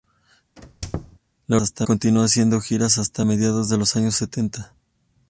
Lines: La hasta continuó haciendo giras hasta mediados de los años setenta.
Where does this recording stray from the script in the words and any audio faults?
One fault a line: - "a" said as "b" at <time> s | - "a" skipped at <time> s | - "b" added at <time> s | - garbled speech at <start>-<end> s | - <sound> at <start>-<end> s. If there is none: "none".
- squeak at 0.6-1.2 s